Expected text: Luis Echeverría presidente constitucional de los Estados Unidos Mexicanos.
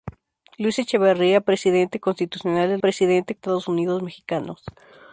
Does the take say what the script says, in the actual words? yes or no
no